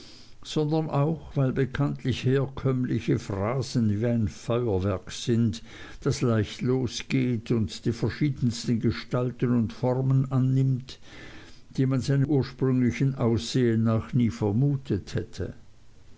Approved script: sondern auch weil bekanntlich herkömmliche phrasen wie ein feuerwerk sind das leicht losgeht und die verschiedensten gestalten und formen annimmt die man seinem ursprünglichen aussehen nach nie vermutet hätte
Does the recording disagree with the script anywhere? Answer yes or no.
no